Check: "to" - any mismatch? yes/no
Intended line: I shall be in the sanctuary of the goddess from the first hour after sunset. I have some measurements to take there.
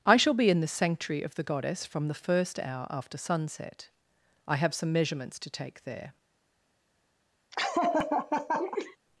no